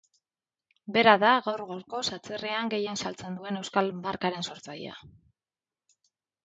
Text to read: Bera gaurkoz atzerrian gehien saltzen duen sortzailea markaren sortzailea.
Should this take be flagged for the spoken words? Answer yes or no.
yes